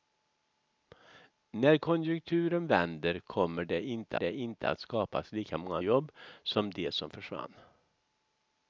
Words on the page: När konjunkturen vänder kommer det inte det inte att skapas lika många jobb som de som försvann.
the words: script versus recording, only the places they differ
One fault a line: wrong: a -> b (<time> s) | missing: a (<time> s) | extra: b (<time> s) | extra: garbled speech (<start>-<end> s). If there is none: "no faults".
no faults